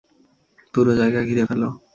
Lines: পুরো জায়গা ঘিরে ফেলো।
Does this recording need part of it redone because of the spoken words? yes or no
no